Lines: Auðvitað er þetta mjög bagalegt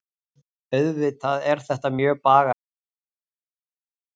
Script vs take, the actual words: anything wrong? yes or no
no